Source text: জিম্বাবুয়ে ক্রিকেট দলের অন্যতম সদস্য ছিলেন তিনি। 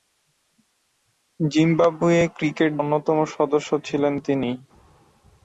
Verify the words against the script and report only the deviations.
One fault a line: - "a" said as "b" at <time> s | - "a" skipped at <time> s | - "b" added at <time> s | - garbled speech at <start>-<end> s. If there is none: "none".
- "দলের" skipped at 2.7 s